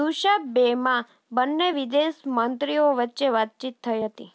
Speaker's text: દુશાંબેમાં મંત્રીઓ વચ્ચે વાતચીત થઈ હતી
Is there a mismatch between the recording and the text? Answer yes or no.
yes